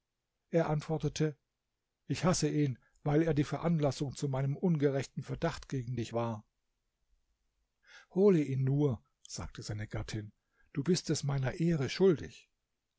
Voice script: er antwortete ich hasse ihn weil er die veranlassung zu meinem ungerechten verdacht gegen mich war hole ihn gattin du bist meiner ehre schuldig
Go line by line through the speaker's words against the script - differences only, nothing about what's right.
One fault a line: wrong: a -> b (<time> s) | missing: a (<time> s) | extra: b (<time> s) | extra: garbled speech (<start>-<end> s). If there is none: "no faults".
wrong: mich -> dich (5.9 s)
extra: nur sagte seine (8.6 s)
extra: es (11.1 s)